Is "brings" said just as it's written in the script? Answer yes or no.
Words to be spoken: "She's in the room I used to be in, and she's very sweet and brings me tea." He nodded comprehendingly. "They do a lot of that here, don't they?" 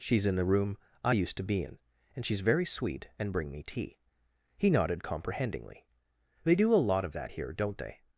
no